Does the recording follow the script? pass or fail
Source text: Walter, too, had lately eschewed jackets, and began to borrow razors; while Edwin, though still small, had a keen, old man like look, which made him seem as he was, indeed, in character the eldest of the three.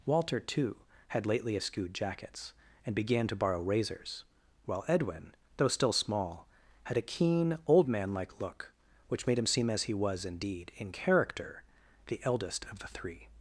pass